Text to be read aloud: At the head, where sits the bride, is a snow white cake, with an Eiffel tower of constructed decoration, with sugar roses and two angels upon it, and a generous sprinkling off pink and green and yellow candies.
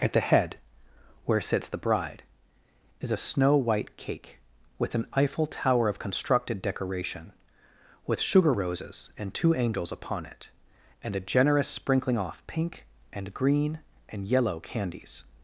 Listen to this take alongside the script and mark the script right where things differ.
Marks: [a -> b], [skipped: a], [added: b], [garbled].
At the head, where sits the bride, is a snow white cake, with an Eiffel tower of constructed decoration, with sugar roses and two angels upon it, and a generous sprinkling off pink and green and yellow candies.